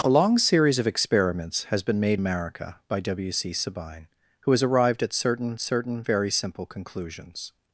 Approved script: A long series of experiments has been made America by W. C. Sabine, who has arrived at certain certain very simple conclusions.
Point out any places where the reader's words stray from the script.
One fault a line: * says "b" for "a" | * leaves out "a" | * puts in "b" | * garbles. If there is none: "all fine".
all fine